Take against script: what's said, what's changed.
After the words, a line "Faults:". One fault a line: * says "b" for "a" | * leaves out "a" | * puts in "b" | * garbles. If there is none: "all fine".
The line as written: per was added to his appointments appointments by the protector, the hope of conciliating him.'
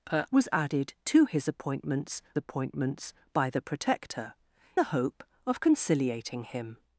per was added to his appointments appointments by the protector, the hope of conciliating him.'
Faults:
all fine